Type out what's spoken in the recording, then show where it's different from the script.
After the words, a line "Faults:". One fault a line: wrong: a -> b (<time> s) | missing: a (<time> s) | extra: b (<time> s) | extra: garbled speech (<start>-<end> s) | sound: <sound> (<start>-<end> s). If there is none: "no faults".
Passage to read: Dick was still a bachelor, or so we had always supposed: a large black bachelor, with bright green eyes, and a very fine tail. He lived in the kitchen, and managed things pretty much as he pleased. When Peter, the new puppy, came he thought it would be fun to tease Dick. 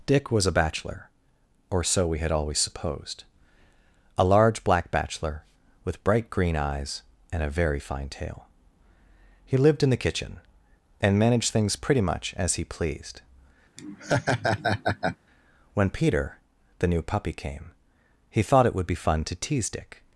Dick was a bachelor, or so we had always supposed: a large black bachelor, with bright green eyes, and a very fine tail. He lived in the kitchen, and managed things pretty much as he pleased. When Peter, the new puppy, came he thought it would be fun to tease Dick.
Faults:
missing: still (0.5 s)
sound: laugh (13.8-15.2 s)